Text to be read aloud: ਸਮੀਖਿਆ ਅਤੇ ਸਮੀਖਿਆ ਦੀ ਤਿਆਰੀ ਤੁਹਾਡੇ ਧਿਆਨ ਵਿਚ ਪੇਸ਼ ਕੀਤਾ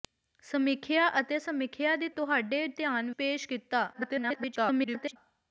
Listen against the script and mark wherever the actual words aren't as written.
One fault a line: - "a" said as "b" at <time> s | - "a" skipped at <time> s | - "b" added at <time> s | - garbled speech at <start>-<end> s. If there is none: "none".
- "ਤਿਆਰੀ" skipped at 2.1 s
- "ਵਿਚ" skipped at 3.1 s
- garbled speech at 3.9-5.2 s